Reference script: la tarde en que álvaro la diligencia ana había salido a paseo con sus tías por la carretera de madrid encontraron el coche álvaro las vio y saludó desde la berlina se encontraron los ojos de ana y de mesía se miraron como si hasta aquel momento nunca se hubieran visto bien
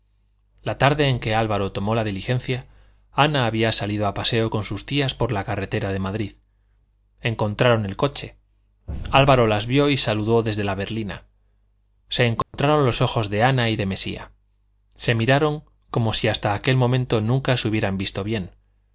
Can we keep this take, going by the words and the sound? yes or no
no